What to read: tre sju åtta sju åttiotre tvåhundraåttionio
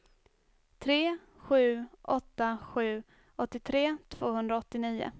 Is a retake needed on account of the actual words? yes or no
no